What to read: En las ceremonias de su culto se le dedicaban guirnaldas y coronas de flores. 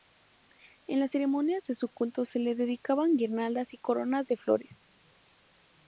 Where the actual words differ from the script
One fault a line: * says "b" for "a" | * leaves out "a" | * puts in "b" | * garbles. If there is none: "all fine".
all fine